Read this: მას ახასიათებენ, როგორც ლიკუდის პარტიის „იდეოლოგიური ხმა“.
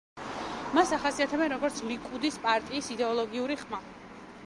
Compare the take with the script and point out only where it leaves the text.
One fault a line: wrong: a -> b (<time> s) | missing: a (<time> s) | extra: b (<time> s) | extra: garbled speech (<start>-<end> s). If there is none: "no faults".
no faults